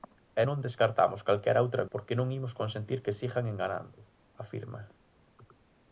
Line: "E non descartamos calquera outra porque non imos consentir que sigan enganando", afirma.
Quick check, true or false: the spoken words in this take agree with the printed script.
true